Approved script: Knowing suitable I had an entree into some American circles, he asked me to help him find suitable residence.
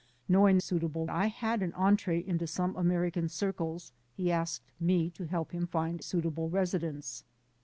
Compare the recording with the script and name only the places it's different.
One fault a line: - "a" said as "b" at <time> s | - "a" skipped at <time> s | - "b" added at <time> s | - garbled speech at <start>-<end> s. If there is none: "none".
none